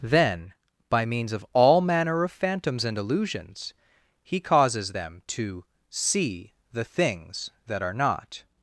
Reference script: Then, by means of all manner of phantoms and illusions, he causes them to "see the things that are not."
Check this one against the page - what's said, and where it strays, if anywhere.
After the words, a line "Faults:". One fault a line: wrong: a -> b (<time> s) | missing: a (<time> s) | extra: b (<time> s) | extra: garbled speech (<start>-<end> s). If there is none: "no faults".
Then, by means of all manner of phantoms and illusions, he causes them to "see the things that are not."
Faults:
no faults